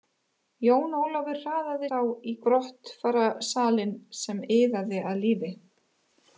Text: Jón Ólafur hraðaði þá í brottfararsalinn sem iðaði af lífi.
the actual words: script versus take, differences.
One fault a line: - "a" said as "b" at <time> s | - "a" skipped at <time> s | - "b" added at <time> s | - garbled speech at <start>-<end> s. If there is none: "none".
none